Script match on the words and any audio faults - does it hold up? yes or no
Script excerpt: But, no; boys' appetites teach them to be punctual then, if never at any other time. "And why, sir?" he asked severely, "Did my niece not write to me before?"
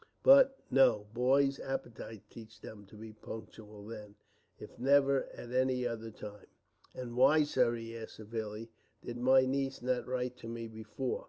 yes